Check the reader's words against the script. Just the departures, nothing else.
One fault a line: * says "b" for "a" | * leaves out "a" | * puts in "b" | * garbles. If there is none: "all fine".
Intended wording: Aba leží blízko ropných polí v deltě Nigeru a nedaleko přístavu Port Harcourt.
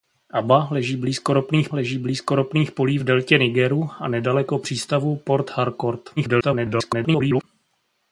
* puts in "leží blízko ropných"
* garbles